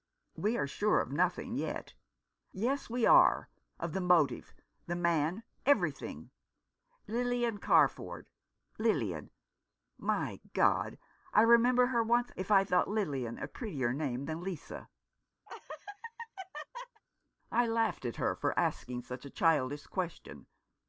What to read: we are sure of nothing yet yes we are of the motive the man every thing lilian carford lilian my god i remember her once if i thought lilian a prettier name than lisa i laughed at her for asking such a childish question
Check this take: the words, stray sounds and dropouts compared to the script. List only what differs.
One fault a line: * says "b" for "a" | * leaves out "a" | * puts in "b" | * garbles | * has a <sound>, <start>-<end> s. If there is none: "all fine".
* has a laugh, 15.5-17.0 s